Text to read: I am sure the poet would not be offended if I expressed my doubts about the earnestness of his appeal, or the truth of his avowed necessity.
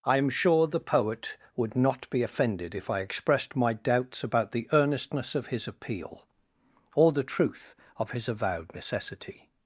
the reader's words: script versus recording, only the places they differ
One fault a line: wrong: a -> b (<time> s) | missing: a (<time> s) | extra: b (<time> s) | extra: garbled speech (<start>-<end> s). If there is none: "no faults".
no faults